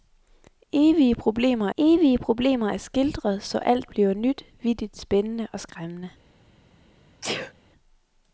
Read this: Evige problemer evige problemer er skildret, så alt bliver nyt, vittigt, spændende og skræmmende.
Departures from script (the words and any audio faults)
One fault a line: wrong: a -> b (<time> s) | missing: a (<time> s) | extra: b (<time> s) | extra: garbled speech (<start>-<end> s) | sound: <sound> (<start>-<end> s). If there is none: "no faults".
sound: sneeze (7.2-7.5 s)